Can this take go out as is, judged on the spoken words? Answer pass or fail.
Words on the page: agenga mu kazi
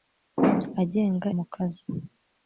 pass